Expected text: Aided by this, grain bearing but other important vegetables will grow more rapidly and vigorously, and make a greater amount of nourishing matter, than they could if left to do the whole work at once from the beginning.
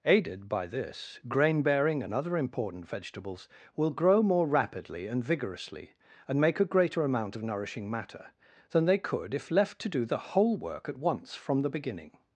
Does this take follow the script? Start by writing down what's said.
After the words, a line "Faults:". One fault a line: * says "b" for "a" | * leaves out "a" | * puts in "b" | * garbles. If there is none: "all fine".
Aided by this, grain bearing and other important vegetables will grow more rapidly and vigorously, and make a greater amount of nourishing matter, than they could if left to do the whole work at once from the beginning.
Faults:
* says "and" for "but"